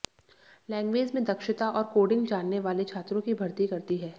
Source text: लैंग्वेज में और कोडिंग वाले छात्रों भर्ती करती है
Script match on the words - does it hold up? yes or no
no